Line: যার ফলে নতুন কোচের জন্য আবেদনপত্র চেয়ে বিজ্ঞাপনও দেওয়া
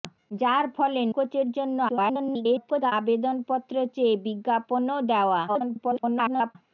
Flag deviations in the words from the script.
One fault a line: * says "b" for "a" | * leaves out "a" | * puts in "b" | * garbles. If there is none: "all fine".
* leaves out "নতুন"
* garbles
* garbles